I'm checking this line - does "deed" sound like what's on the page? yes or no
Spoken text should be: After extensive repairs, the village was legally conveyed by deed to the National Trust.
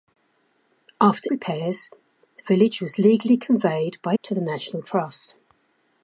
no